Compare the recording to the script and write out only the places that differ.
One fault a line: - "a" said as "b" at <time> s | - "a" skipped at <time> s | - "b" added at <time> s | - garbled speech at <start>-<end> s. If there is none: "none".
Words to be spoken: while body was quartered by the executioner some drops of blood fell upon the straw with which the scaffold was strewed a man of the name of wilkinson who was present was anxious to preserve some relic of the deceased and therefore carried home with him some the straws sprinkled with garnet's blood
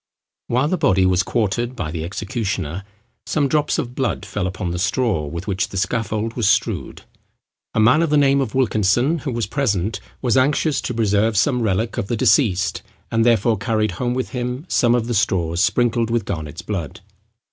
- "the" added at 0.7 s
- "of" added at 14.9 s